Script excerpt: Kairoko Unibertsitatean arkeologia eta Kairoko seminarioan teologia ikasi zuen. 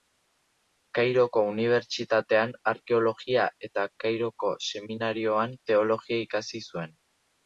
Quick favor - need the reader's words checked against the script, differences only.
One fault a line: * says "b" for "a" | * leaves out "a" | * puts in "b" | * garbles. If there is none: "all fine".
all fine